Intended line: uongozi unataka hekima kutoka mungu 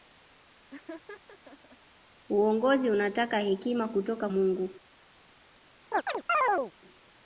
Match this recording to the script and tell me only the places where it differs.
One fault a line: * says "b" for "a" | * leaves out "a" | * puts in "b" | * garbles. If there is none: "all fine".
all fine